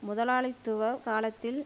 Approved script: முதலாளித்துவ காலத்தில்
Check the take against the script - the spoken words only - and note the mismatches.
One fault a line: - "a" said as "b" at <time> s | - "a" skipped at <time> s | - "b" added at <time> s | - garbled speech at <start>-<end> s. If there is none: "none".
none